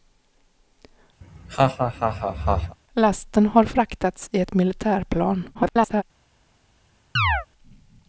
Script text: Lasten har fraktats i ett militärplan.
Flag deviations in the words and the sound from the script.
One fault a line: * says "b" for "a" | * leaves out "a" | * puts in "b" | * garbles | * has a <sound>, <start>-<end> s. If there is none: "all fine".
* has a laugh, 1.2-2.8 s
* garbles
* has a chirp, 7.2-7.5 s